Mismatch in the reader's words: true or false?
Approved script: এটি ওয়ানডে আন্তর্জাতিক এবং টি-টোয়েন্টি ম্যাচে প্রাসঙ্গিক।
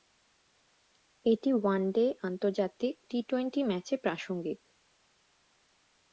true